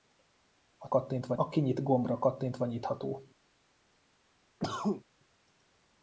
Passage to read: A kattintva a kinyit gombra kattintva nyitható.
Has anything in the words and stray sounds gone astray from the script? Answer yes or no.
yes